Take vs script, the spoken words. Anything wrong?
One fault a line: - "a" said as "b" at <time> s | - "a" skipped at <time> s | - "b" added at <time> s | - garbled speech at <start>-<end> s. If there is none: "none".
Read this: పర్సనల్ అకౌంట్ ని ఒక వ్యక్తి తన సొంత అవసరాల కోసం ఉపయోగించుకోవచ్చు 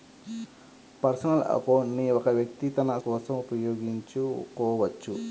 - "సొంత అవసరాల" skipped at 3.0 s